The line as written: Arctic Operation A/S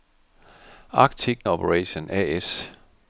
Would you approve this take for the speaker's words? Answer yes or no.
yes